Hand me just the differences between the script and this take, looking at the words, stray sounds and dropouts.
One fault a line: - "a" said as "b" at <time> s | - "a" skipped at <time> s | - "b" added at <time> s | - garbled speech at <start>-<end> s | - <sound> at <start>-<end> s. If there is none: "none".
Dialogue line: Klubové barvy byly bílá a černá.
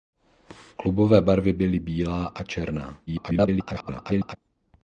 - garbled speech at 3.1-4.4 s